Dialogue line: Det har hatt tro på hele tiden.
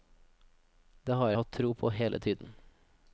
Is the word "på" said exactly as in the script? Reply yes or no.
yes